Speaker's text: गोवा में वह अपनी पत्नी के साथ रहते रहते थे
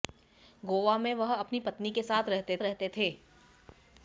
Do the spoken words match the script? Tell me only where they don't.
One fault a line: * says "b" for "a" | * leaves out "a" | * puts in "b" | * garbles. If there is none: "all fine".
all fine